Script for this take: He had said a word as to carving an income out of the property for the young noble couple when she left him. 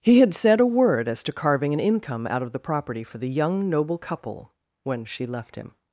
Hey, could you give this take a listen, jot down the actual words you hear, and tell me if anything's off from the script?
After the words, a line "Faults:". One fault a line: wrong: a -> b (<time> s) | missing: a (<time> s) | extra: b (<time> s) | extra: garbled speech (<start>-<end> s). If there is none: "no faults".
He had said a word as to carving an income out of the property for the young noble couple when she left him.
Faults:
no faults